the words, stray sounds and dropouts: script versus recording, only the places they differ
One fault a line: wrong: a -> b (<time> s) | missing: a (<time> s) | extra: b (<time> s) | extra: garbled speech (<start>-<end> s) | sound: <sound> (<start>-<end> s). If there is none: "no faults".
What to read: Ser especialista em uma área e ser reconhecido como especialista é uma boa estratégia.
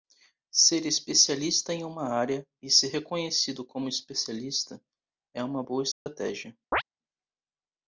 sound: dropout (5.9-6.1 s)
sound: chirp (6.7-6.8 s)